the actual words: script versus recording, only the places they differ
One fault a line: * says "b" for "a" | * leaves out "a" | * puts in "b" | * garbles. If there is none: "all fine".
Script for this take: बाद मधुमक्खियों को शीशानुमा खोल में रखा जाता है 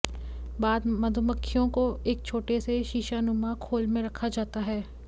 * puts in "एक छोटे से"